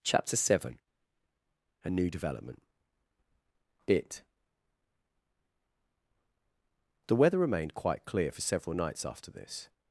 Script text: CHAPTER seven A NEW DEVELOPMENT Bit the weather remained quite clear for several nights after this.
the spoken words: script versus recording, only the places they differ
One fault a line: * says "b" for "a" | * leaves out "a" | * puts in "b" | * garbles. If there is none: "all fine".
all fine